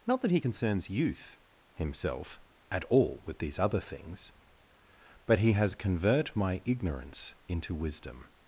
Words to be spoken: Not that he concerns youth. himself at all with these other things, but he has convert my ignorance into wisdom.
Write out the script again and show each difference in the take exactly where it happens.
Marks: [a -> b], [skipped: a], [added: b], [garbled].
Not that he concerns youth. himself at all with these other things, but he has convert my ignorance into wisdom.